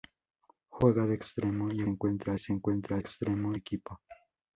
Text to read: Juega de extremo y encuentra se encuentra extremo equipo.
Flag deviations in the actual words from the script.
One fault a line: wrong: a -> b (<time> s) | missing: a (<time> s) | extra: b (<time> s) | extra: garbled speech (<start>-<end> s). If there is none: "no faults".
no faults